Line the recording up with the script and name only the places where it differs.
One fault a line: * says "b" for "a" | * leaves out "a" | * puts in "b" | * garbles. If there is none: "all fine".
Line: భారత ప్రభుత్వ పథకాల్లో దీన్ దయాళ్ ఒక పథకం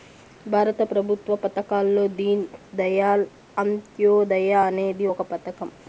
* puts in "అంత్యోదయ అనేది"